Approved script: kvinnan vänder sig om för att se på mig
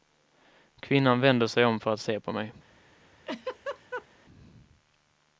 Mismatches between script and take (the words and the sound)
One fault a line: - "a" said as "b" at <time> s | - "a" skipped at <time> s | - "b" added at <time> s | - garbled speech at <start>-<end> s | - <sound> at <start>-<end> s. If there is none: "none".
- laugh at 3.3-4.1 s